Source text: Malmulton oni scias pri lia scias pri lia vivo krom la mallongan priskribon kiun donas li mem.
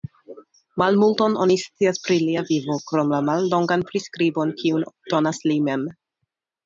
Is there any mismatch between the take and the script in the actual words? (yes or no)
yes